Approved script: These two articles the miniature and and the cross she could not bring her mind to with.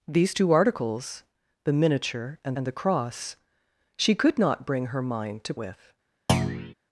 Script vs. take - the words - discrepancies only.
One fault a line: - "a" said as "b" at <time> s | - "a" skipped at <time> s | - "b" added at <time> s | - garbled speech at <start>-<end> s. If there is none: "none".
none